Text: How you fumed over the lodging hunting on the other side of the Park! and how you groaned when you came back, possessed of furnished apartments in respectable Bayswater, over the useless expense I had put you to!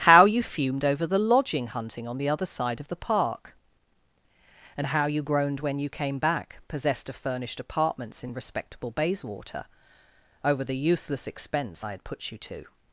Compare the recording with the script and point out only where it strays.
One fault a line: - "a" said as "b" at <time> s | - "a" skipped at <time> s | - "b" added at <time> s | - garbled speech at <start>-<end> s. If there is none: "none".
none